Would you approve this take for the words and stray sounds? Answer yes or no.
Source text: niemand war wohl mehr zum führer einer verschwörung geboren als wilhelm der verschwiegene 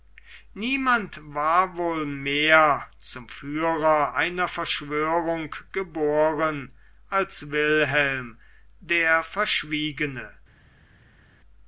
yes